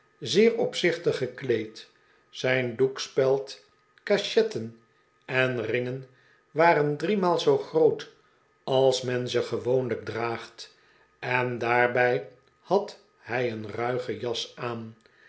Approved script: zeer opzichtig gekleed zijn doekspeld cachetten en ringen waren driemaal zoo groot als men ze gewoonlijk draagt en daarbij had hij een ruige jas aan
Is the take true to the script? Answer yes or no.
yes